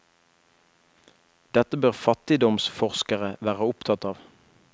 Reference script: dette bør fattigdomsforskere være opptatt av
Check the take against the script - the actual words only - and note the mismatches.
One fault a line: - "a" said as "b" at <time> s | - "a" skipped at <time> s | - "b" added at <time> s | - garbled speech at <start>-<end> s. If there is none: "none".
none